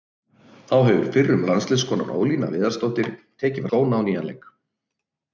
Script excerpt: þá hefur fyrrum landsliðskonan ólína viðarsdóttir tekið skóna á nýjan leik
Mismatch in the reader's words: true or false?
false